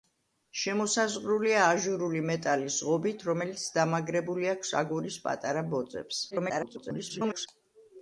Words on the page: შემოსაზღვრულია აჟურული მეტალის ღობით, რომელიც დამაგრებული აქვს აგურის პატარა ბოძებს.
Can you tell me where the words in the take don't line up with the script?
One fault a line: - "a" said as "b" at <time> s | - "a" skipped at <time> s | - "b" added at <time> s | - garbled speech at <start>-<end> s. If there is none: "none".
- garbled speech at 6.3-7.5 s